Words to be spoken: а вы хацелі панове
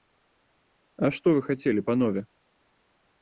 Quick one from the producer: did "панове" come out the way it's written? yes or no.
yes